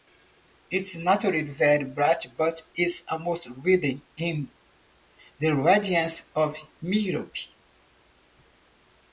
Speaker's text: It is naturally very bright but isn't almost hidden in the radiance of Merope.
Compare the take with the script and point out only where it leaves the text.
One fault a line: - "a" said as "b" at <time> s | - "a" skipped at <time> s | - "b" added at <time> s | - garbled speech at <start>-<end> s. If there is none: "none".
- "isn't" said as "is" at 2.7 s